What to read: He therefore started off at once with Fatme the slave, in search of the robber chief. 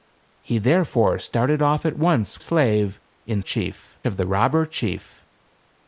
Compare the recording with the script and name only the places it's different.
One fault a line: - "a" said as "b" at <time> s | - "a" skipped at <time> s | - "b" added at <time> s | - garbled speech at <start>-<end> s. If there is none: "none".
- "with Fatme the" skipped at 2.4 s
- "search" said as "chief" at 3.4 s